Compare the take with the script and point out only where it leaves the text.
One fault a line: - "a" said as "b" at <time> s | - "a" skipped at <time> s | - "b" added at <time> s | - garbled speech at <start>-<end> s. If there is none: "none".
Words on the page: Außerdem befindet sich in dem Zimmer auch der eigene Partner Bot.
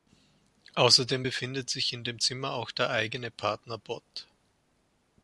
none